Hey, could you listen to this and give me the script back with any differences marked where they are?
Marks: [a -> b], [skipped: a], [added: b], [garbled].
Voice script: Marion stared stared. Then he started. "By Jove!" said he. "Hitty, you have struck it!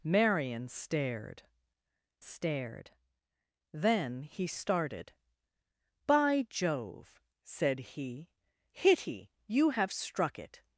Marion stared stared. Then he started. "By Jove!" said he. "Hitty, you have struck it!